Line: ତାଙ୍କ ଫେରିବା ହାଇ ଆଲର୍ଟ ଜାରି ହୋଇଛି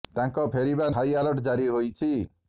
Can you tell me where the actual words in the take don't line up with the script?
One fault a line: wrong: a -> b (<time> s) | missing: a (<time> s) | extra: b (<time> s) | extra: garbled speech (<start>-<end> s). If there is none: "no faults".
no faults